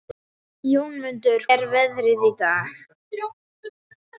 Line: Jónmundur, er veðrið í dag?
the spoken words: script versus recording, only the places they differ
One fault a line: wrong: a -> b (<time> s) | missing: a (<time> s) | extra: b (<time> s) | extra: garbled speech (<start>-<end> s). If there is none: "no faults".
no faults